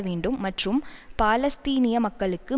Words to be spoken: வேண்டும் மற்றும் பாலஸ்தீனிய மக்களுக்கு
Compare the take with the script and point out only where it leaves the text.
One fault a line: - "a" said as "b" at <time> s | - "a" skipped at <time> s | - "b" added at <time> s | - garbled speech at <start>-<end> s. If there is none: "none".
none